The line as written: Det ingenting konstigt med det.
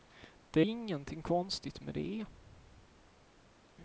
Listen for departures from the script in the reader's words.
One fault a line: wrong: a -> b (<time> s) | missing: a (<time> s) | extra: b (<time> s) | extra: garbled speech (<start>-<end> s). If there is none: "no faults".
no faults